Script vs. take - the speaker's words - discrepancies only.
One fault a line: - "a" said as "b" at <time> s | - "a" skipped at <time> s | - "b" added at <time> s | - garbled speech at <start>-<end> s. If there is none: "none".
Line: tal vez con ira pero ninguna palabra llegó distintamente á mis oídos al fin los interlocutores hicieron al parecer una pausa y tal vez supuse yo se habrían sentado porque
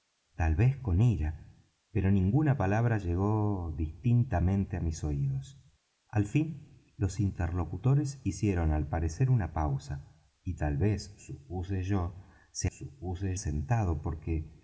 - "habrían" said as "supuse" at 12.7 s